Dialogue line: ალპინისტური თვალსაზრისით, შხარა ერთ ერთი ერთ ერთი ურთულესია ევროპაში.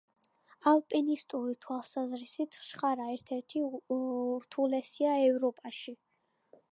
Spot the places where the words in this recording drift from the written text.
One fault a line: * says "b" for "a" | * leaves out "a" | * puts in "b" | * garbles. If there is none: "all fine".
* leaves out "ერთ ერთი"